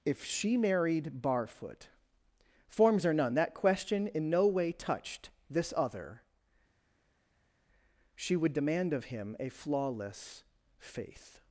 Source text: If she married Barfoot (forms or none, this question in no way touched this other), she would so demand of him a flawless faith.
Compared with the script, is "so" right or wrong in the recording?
wrong